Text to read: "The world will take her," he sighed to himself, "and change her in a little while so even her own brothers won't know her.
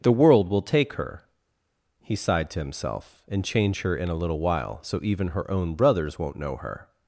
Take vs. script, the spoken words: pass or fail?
pass